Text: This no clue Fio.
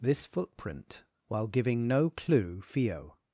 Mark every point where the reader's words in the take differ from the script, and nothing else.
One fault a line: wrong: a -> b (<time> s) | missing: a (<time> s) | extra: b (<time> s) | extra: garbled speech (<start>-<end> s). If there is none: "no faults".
extra: footprint while giving (0.2 s)